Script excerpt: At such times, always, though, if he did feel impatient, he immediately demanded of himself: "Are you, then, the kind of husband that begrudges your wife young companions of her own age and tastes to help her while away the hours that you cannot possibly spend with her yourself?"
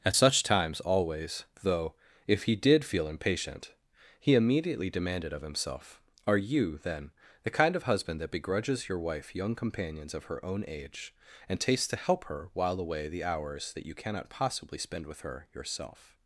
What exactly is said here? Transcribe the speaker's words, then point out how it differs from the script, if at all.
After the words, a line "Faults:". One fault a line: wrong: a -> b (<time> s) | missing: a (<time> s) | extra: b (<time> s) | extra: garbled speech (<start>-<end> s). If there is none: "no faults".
At such times, always, though, if he did feel impatient, he immediately demanded of himself: "Are you, then, the kind of husband that begrudges your wife young companions of her own age and tastes to help her while away the hours that you cannot possibly spend with her yourself?"
Faults:
no faults